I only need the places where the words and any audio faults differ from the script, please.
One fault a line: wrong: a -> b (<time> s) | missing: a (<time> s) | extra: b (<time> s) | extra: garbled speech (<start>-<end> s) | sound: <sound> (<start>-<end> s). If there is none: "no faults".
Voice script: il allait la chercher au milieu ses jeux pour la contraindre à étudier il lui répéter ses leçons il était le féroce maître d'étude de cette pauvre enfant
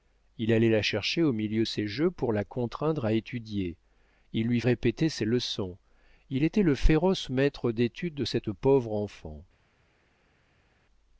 no faults